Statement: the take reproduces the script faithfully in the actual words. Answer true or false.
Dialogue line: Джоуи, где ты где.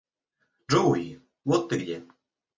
false